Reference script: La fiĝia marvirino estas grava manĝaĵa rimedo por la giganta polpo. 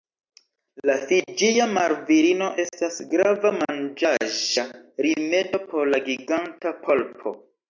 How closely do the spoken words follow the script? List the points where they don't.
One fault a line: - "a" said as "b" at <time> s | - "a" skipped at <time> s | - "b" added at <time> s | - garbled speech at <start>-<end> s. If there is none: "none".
none